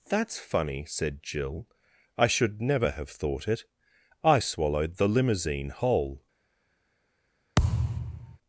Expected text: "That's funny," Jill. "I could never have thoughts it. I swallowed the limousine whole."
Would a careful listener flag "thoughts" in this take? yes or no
yes